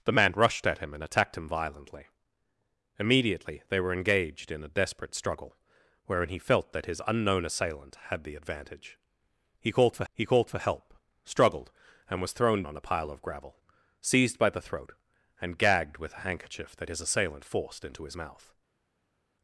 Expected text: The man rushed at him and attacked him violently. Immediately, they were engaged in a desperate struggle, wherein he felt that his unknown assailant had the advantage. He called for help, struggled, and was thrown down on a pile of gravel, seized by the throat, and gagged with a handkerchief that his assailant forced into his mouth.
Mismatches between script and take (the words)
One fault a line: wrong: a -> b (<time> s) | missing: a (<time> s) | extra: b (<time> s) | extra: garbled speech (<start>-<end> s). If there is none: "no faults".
extra: he called for (10.1 s)
missing: down (12.6 s)